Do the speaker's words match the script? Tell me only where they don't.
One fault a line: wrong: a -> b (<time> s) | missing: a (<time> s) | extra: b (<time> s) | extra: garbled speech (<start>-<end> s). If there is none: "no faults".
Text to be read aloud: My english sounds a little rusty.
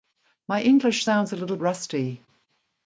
no faults